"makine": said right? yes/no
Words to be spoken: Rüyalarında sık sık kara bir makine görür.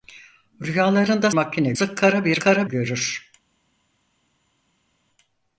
no